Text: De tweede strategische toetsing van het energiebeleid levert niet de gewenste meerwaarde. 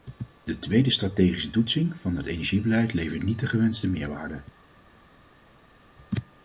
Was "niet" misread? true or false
false